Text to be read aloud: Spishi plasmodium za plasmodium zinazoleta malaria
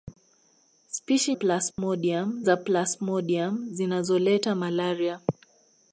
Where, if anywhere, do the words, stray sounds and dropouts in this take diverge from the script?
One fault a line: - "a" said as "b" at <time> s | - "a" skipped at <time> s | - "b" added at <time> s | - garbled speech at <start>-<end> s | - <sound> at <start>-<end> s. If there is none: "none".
- dropout at 1.7-1.8 s